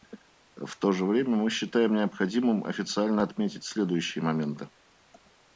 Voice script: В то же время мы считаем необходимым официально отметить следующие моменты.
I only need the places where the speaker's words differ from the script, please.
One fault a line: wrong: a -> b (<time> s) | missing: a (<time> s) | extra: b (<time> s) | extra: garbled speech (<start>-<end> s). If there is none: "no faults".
no faults